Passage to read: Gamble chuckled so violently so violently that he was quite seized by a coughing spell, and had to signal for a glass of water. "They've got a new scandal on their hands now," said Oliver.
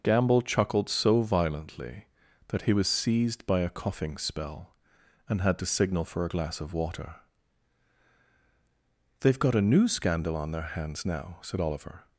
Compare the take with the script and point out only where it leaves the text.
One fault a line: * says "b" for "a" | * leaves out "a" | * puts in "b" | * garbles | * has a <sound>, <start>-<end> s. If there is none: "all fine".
* leaves out "so violently"
* leaves out "quite"